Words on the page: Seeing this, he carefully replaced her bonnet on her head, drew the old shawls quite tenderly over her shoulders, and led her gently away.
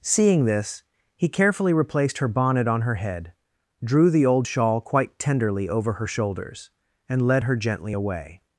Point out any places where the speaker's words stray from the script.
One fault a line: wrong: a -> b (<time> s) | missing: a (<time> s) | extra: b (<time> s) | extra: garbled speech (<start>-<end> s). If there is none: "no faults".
wrong: shawls -> shawl (4.4 s)